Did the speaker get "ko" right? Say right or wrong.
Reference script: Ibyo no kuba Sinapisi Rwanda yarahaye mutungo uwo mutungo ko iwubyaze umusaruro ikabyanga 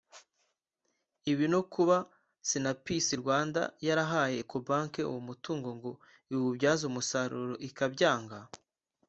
wrong